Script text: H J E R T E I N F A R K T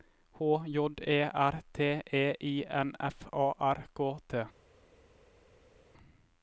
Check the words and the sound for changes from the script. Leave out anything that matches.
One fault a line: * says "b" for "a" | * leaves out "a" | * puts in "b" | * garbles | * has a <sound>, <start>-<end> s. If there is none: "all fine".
all fine